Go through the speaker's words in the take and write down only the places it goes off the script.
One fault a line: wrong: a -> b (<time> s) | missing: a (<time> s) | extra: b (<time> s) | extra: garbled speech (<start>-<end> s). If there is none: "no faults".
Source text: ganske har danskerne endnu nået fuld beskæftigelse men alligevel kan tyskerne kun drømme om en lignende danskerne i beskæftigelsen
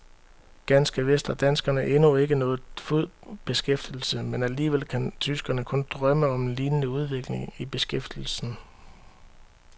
extra: vist (1.1 s)
extra: ikke (2.1 s)
wrong: danskerne -> udvikling (6.9 s)